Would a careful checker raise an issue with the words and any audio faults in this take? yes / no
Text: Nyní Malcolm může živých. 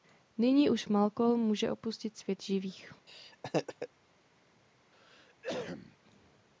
yes